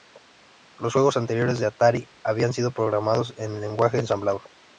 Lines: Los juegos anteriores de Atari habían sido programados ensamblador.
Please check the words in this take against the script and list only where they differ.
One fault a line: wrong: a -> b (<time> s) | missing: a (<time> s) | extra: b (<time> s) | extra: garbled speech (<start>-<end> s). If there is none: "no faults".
extra: en Lenguaje (3.4 s)